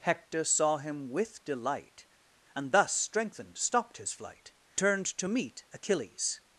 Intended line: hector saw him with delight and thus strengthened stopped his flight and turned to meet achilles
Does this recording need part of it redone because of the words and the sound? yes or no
yes